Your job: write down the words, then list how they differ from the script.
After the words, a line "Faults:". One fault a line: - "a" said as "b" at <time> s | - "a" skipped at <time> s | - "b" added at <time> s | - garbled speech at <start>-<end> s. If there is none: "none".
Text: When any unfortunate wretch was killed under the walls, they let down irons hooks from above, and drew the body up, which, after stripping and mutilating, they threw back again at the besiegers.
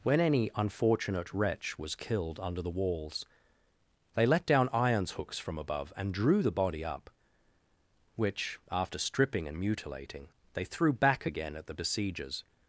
When any unfortunate wretch was killed under the walls, they let down irons hooks from above, and drew the body up, which, after stripping and mutilating, they threw back again at the besiegers.
Faults:
none